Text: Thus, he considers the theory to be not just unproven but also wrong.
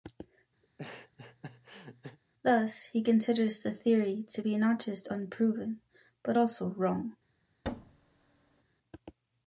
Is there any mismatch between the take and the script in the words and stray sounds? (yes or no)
yes